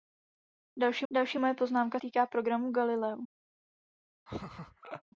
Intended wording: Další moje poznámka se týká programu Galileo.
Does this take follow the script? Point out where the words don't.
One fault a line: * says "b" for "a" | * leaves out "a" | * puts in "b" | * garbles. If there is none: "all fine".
* puts in "další"
* leaves out "se"